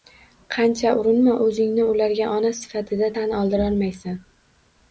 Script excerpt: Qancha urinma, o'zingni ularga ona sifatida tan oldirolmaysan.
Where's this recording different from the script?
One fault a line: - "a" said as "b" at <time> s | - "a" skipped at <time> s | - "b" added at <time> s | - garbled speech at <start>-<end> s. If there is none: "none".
none